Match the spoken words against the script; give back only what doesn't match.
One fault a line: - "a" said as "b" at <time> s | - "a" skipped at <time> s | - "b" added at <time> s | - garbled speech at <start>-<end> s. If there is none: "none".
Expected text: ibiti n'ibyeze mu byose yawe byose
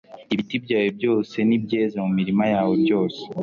- "byawe byose" added at 0.7 s
- "byose" said as "mirima" at 2.2 s